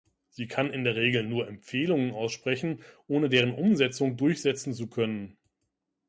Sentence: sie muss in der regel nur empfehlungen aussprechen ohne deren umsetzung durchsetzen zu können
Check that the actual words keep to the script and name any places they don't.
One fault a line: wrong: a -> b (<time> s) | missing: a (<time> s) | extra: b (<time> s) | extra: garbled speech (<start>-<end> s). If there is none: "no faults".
wrong: muss -> kann (0.5 s)